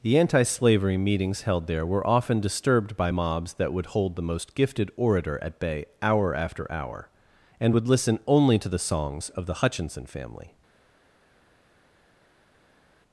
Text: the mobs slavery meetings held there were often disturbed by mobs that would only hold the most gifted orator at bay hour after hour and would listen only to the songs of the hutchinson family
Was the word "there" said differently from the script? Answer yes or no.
no